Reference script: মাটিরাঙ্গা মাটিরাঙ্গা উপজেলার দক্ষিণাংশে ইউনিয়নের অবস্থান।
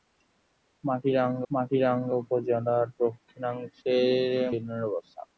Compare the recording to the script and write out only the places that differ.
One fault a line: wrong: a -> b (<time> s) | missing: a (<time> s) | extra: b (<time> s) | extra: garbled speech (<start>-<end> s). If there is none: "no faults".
no faults